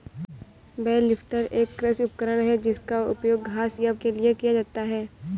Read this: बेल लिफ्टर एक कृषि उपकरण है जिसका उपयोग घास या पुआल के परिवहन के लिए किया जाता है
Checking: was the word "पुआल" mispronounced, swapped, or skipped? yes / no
yes